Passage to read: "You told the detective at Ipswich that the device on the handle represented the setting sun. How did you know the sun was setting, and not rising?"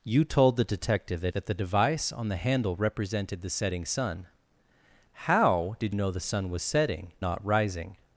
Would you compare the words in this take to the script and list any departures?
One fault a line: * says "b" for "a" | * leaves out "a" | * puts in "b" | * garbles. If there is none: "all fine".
* leaves out "Ipswich"
* leaves out "you"
* leaves out "and"